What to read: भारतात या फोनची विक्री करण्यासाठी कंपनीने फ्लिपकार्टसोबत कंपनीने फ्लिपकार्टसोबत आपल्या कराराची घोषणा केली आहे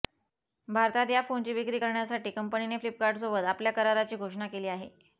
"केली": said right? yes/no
yes